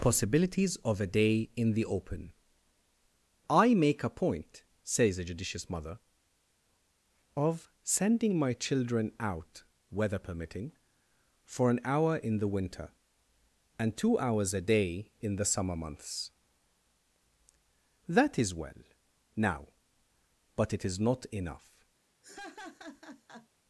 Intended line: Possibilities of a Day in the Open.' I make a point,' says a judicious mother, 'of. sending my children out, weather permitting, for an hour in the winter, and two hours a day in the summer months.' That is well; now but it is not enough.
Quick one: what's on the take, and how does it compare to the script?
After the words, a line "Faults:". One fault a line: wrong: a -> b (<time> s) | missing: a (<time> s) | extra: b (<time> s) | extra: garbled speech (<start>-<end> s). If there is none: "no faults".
Possibilities of a Day in the Open.' I make a point,' says a judicious mother, 'of. sending my children out, weather permitting, for an hour in the winter, and two hours a day in the summer months.' That is well; now but it is not enough.
Faults:
no faults